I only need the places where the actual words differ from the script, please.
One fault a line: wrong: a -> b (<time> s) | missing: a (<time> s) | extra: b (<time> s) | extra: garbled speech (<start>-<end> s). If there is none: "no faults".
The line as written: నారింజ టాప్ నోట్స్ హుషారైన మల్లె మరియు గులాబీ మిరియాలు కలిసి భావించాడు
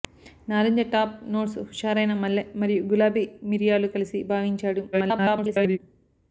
extra: garbled speech (4.9-5.8 s)